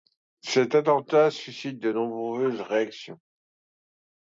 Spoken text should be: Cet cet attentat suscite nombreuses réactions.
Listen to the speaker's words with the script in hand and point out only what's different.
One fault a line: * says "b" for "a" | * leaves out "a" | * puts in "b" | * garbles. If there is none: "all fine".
* leaves out "cet"
* puts in "de"